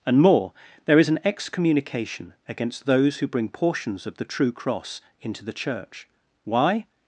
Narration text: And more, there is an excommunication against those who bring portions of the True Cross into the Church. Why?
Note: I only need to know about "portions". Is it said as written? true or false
true